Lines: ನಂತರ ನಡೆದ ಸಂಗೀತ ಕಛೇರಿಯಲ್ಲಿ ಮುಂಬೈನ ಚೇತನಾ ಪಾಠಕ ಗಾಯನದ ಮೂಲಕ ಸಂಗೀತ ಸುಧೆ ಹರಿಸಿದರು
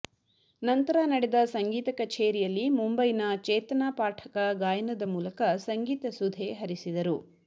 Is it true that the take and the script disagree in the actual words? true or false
false